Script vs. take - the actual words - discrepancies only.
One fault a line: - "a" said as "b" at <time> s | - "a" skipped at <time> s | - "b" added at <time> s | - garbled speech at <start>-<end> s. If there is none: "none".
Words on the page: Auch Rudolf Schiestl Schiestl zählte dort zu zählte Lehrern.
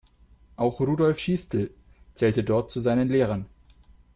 - "Schiestl" skipped at 1.7 s
- "zählte" said as "seinen" at 2.8 s